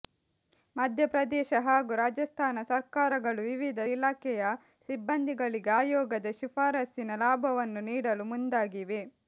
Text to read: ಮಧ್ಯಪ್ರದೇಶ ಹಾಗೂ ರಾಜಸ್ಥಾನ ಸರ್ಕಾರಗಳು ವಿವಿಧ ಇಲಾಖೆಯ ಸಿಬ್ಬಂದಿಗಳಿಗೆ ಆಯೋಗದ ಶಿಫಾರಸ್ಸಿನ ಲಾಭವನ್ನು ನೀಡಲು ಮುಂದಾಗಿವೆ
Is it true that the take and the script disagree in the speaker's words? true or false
false